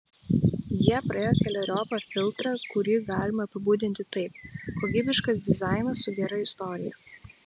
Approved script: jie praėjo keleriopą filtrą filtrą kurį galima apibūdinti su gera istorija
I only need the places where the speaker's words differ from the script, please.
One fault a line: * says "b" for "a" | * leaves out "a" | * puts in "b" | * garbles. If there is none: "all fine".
* leaves out "filtrą"
* puts in "taip kokybiškas dizainas"